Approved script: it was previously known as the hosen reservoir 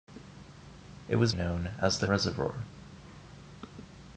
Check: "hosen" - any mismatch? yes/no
yes